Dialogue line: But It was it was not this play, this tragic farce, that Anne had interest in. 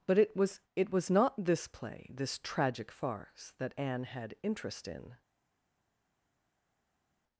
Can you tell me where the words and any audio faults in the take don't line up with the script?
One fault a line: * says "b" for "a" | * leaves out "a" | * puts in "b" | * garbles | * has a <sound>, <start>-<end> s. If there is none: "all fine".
all fine